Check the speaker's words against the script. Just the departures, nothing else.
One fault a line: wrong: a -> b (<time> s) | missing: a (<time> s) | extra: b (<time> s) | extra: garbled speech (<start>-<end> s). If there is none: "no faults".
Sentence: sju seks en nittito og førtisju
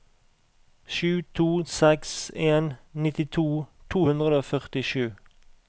extra: to (1.4 s)
extra: to hundre (3.9 s)